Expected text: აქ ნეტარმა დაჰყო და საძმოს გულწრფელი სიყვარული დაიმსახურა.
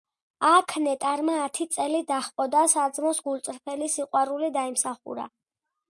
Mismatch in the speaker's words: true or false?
true